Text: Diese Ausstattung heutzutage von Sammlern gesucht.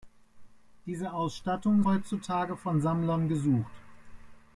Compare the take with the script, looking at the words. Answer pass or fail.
pass